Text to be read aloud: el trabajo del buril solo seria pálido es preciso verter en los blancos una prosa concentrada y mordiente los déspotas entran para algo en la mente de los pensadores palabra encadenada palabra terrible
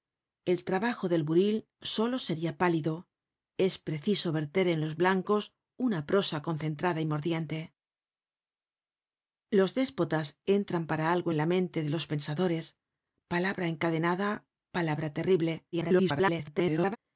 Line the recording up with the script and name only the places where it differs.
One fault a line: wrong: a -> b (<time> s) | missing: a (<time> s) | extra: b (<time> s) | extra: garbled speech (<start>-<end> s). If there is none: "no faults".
extra: garbled speech (15.7-17.0 s)